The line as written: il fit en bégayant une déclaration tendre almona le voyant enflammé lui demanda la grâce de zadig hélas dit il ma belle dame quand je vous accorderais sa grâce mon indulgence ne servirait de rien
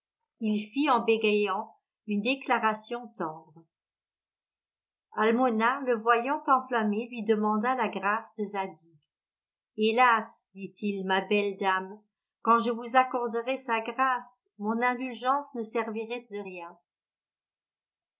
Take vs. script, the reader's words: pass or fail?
pass